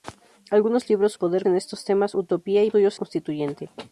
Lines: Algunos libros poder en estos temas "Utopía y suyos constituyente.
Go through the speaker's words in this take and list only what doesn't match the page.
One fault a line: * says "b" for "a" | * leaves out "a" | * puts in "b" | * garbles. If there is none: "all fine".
all fine